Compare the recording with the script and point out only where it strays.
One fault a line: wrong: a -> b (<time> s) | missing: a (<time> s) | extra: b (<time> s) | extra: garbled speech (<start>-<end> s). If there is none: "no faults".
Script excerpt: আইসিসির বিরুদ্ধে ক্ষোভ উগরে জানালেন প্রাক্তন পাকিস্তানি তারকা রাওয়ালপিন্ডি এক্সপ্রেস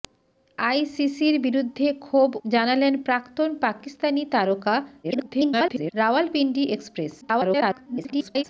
missing: উগরে (2.3 s)
extra: garbled speech (5.0-5.9 s)
extra: garbled speech (7.2-8.4 s)